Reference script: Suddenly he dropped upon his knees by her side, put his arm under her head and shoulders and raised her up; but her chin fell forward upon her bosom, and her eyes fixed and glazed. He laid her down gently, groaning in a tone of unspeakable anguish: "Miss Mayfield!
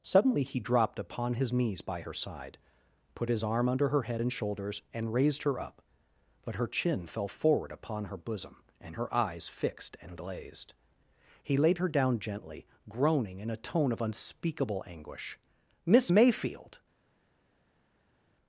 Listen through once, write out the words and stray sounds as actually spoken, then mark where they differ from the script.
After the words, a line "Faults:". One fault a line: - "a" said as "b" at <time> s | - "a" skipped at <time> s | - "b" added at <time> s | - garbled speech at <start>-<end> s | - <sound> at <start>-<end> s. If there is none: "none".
Suddenly he dropped upon his knees by her side, put his arm under her head and shoulders and raised her up; but her chin fell forward upon her bosom, and her eyes fixed and glazed. He laid her down gently, groaning in a tone of unspeakable anguish: "Miss Mayfield!
Faults:
none